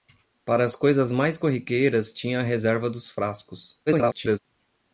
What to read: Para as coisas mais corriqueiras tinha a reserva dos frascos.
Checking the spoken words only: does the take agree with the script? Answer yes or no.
no